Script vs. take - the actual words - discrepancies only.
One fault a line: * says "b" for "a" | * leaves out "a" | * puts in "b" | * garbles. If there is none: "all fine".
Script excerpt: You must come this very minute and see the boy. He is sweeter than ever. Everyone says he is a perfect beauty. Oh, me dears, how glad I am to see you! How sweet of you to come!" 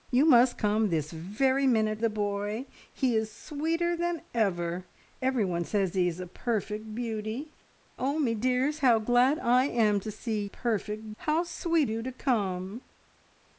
* leaves out "and see"
* says "perfect" for "you"
* leaves out "of"